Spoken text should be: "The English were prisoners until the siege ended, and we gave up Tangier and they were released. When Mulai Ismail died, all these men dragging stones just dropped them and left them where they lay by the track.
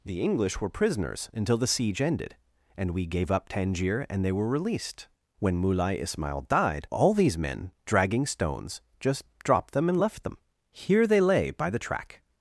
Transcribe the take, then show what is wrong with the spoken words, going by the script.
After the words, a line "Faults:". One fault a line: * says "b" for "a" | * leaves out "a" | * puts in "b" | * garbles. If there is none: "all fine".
"The English were prisoners until the siege ended, and we gave up Tangier and they were released. When Mulai Ismail died, all these men dragging stones just dropped them and left them here they lay by the track.
Faults:
* says "here" for "where"